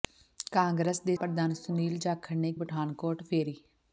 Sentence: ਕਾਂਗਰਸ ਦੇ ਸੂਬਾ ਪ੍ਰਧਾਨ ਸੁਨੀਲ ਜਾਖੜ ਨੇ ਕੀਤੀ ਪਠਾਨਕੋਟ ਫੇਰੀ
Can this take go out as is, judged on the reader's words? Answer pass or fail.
fail